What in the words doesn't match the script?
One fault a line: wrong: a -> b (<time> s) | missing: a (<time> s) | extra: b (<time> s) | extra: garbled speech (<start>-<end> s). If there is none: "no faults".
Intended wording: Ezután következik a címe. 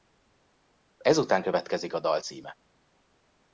extra: dal (2.0 s)